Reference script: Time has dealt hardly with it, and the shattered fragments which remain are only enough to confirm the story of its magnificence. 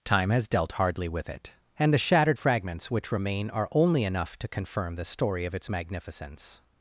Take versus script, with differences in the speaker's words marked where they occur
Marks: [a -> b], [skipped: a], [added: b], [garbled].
Time has dealt hardly with it, and the shattered fragments which remain are only enough to confirm the story of its magnificence.